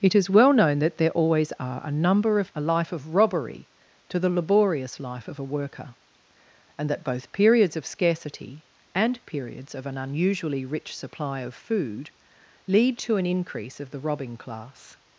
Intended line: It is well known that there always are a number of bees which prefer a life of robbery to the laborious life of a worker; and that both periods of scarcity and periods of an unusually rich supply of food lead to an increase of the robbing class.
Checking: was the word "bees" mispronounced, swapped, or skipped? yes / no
yes